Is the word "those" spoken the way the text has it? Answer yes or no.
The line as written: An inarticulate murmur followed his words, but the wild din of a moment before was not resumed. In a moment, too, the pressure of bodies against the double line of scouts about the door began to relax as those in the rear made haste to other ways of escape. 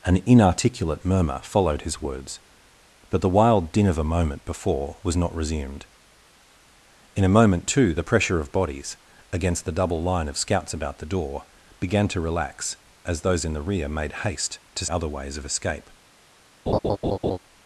yes